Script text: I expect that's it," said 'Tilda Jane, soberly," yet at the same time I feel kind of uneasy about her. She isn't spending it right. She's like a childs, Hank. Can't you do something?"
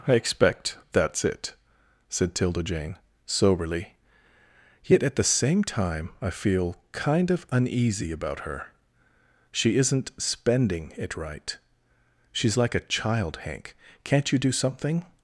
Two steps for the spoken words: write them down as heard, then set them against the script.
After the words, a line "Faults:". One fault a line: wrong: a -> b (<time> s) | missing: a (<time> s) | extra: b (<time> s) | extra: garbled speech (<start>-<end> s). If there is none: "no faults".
I expect that's it," said 'Tilda Jane, soberly," yet at the same time I feel kind of uneasy about her. She isn't spending it right. She's like a child, Hank. Can't you do something?"
Faults:
wrong: childs -> child (12.8 s)